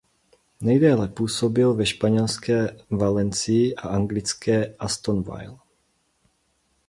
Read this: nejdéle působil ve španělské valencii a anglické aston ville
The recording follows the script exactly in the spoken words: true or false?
true